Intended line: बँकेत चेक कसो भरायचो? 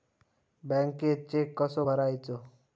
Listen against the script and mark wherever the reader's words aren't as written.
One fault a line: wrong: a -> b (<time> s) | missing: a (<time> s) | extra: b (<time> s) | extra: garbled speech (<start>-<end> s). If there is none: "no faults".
no faults